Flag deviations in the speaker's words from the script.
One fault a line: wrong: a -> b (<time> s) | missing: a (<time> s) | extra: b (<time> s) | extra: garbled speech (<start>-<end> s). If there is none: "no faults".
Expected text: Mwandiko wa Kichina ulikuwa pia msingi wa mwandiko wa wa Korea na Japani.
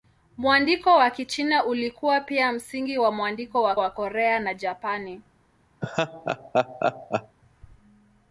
no faults